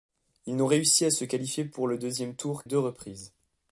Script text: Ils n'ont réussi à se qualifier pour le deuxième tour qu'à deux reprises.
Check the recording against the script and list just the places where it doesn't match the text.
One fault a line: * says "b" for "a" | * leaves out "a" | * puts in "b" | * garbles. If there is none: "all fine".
* leaves out "qu'à"